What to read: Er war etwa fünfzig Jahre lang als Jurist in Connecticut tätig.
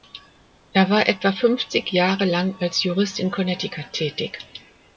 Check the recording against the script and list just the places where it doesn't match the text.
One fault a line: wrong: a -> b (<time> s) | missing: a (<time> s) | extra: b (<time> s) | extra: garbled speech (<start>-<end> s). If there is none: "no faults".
no faults